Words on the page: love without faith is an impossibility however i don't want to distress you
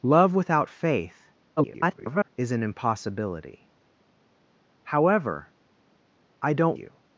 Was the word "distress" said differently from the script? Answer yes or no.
yes